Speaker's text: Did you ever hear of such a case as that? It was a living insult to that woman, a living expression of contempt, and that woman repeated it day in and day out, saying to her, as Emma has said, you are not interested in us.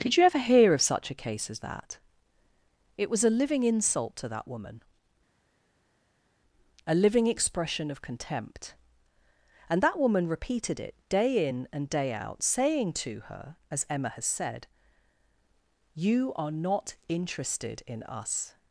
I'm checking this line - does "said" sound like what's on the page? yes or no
yes